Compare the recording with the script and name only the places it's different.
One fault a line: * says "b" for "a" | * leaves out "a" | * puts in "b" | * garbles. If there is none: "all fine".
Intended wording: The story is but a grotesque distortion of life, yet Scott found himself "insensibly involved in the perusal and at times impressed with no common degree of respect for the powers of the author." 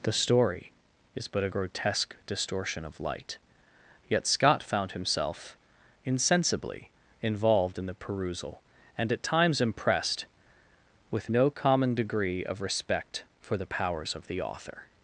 * says "light" for "life"